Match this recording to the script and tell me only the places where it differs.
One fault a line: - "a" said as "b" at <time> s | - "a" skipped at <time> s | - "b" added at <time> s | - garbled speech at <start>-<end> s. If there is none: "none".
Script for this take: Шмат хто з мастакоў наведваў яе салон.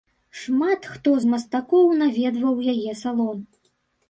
none